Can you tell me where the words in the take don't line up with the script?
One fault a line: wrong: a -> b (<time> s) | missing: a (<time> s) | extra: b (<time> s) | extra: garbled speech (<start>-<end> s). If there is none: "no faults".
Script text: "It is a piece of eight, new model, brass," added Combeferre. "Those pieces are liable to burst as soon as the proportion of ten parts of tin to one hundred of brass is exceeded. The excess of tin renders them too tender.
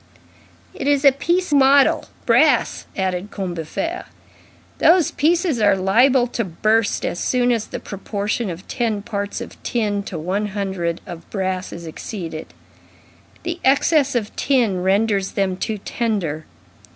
missing: of eight new (1.5 s)